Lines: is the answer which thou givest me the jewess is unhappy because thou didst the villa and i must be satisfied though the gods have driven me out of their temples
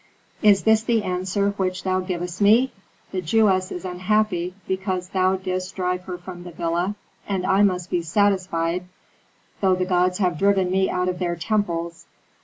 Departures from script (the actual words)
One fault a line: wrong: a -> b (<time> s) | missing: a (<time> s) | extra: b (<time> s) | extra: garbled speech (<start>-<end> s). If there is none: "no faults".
extra: this (0.6 s)
extra: drive her from (5.8 s)